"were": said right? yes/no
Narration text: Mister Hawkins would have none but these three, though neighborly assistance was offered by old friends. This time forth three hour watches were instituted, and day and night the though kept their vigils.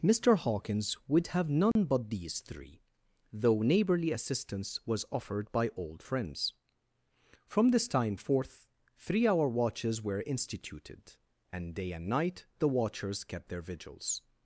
yes